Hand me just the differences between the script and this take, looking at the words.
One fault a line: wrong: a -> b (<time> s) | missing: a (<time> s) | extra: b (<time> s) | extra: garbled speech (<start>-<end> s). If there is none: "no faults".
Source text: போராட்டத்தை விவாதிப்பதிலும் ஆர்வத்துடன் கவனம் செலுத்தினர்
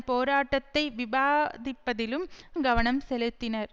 missing: ஆர்வத்துடன் (2.2 s)